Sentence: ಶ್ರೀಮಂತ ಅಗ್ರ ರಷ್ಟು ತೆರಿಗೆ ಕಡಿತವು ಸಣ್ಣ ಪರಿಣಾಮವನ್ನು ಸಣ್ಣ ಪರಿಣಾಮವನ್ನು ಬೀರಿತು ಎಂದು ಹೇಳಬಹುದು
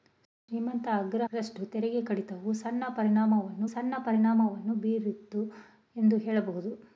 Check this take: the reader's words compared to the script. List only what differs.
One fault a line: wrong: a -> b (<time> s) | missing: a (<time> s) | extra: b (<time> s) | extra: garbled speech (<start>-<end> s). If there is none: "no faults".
no faults